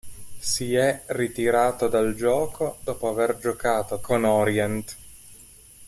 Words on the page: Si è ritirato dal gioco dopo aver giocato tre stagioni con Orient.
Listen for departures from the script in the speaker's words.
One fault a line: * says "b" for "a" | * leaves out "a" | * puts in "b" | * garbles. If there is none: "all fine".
* leaves out "tre stagioni"